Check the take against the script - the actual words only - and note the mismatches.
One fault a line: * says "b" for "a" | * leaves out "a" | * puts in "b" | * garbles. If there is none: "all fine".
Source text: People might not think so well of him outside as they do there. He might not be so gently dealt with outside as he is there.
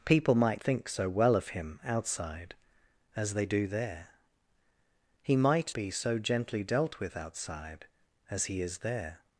* leaves out "not"
* leaves out "not"